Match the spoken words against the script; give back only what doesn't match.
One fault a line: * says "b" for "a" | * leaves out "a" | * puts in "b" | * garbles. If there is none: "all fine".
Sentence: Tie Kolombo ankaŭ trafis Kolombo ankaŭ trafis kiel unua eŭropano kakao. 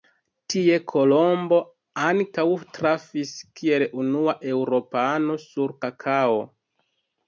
* leaves out "Kolombo ankaŭ trafis"
* puts in "sur"